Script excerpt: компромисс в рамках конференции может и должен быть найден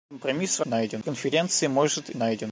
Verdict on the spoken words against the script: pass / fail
fail